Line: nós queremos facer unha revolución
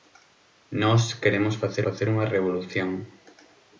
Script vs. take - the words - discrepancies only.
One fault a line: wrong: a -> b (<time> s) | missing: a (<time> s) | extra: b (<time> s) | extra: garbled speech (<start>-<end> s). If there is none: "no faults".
extra: facer (1.8 s)